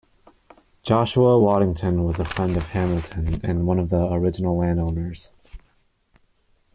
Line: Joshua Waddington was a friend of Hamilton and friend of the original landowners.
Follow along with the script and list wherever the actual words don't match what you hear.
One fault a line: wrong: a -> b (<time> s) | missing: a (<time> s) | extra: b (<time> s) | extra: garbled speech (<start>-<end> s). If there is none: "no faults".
wrong: friend -> one (3.7 s)